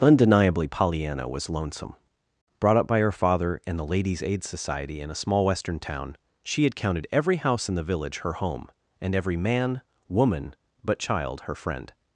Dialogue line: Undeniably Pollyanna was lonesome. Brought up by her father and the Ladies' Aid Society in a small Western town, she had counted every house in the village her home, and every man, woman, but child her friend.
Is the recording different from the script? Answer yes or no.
no